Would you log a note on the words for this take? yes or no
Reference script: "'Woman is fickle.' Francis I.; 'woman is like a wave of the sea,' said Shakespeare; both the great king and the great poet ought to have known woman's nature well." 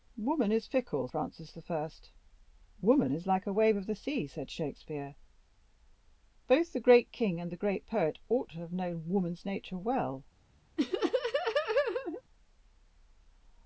no